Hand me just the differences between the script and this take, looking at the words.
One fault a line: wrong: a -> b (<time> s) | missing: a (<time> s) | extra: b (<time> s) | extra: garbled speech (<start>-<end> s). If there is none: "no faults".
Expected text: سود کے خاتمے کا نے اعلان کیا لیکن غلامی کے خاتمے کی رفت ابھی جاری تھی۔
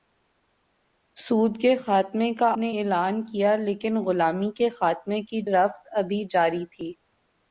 no faults